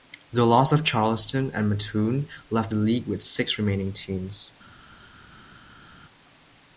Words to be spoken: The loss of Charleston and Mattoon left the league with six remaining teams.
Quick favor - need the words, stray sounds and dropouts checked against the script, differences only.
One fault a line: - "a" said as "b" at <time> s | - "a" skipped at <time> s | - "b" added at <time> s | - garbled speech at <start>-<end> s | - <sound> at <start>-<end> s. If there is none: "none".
none